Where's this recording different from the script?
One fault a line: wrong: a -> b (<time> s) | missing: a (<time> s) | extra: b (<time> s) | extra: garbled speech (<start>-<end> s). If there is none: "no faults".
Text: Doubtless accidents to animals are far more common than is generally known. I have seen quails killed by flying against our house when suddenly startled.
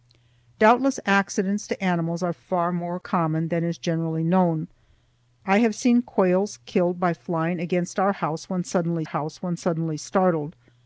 extra: house when suddenly (9.0 s)